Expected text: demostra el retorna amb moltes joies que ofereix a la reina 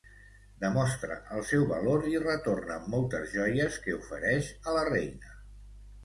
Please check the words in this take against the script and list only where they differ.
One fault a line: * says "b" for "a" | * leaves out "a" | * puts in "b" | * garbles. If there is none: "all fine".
* puts in "seu valor i"